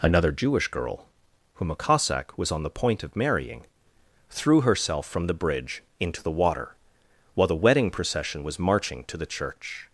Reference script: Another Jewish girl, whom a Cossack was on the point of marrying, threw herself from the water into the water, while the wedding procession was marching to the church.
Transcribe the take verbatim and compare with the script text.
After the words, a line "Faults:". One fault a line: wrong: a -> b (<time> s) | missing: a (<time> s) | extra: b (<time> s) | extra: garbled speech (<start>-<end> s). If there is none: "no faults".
Another Jewish girl, whom a Cossack was on the point of marrying, threw herself from the bridge into the water, while the wedding procession was marching to the church.
Faults:
wrong: water -> bridge (5.3 s)